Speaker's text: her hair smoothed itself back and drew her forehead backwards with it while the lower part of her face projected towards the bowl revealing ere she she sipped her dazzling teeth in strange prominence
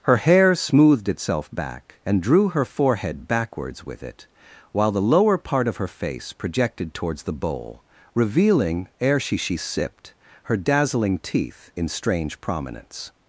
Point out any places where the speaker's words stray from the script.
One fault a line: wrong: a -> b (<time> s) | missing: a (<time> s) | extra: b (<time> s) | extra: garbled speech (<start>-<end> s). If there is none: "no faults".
no faults